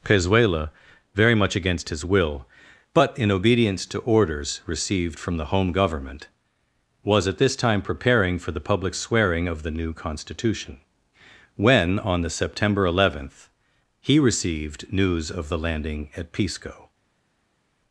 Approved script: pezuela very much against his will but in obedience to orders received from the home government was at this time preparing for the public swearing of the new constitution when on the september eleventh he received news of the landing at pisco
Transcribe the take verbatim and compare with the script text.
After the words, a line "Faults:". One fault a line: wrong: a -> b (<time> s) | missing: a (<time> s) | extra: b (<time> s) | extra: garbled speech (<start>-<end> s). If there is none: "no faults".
pezuela very much against his will but in obedience to orders received from the home government was at this time preparing for the public swearing of the new constitution when on the september eleventh he received news of the landing at pisco
Faults:
no faults